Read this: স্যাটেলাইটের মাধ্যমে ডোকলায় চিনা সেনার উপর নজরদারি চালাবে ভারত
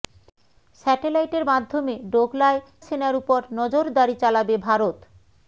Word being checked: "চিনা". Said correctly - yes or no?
no